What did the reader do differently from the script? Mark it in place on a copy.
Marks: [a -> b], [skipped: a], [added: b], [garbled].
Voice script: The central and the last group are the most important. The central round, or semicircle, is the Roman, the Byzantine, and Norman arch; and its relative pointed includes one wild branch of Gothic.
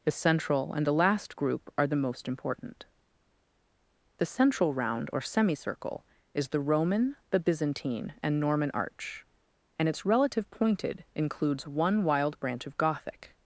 The central and the last group are the most important. The central round, or semicircle, is the Roman, the Byzantine, and Norman arch; and its relative pointed includes one wild branch of Gothic.